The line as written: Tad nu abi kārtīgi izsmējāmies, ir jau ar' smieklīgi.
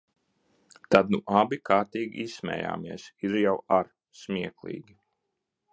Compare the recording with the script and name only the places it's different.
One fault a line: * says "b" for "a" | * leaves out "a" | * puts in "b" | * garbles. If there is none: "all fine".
all fine